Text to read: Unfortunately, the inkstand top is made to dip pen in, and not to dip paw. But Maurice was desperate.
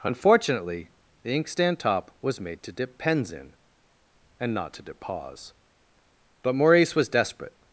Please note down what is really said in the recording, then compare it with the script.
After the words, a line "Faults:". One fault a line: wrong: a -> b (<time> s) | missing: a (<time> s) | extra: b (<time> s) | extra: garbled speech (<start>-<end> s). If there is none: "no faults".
Unfortunately, the inkstand top was made to dip pens in, and not to dip paws. But Maurice was desperate.
Faults:
wrong: is -> was (2.2 s)
wrong: pen -> pens (3.0 s)
wrong: paw -> paws (5.0 s)